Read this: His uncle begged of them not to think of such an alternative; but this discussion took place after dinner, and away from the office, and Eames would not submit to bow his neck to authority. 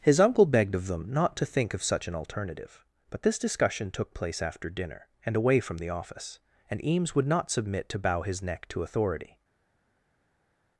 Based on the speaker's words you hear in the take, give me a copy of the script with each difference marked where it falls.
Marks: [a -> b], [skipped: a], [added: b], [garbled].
His uncle begged of them not to think of such an alternative; but this discussion took place after dinner, and away from the office, and Eames would not submit to bow his neck to authority.